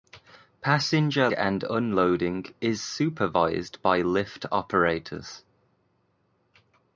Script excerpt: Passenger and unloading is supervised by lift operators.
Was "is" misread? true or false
false